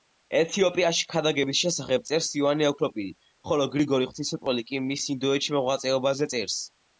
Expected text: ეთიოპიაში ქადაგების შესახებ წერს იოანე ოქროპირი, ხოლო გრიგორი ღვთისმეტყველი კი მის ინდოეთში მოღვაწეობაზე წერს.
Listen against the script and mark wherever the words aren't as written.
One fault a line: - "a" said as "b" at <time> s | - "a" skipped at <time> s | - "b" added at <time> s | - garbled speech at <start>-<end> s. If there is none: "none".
none